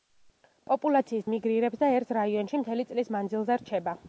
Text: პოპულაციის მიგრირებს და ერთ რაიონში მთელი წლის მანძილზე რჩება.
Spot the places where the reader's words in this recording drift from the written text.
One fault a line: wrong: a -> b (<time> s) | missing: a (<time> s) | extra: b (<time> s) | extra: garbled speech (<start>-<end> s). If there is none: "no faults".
no faults